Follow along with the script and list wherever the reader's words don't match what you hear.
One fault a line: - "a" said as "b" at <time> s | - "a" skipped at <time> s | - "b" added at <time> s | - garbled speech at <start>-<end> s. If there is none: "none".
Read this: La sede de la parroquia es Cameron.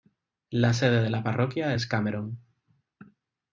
none